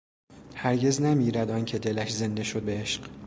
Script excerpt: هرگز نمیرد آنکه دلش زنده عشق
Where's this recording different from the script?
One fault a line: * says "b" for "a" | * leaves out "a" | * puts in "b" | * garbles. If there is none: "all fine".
* puts in "شد به"